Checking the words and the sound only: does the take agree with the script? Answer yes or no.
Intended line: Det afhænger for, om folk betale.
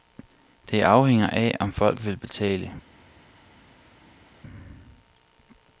no